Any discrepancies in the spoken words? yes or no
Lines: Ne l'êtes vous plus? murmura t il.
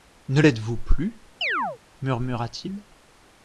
no